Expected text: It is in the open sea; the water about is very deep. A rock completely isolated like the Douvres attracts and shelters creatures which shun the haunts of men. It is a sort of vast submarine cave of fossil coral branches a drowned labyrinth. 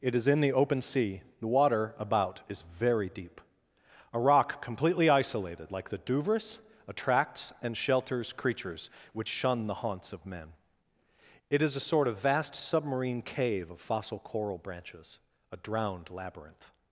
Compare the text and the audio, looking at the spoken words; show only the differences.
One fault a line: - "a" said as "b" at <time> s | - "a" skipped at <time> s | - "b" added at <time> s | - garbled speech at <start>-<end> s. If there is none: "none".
none